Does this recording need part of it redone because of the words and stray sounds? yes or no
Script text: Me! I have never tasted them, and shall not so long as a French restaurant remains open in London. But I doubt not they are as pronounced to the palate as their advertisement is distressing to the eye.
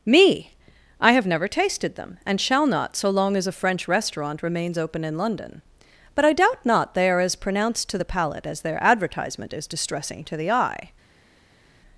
no